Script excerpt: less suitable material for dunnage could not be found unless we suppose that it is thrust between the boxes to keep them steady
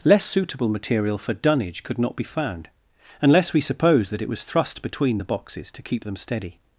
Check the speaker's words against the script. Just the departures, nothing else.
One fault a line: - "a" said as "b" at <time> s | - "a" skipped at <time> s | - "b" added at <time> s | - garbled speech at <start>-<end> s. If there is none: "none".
- "is" said as "was" at 4.3 s